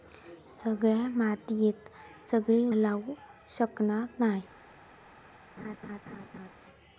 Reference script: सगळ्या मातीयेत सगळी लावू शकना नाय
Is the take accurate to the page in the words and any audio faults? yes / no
no